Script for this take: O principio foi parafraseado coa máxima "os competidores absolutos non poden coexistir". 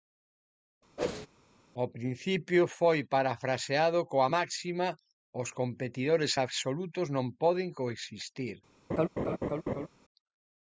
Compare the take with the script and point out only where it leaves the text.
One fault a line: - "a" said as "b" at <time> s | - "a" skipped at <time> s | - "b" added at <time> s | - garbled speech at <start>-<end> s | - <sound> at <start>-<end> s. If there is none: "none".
- whoosh at 1.0-1.3 s
- laugh at 8.9-9.9 s